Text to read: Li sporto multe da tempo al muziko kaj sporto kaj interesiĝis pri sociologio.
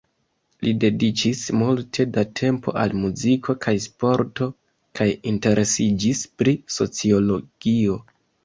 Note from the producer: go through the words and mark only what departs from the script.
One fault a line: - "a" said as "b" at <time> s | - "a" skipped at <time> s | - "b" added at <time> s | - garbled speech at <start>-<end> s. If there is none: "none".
- "sporto" said as "dediĉis" at 0.8 s